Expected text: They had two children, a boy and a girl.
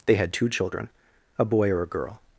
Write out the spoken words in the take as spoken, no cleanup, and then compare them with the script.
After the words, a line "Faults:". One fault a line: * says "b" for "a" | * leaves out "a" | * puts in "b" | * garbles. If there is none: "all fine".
They had two children, a boy or a girl.
Faults:
* says "or" for "and"